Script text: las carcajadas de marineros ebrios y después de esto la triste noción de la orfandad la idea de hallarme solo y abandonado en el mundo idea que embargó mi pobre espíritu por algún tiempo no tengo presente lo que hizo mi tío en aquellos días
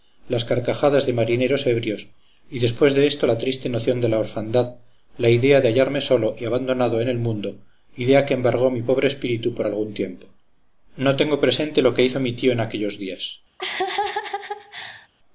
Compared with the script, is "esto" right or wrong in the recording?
right